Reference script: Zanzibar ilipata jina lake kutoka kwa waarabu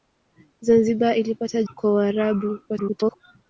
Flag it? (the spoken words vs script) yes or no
yes